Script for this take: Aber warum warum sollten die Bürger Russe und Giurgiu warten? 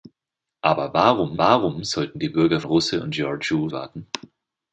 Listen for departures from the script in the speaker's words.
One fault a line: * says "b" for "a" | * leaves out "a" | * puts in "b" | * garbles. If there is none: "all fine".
all fine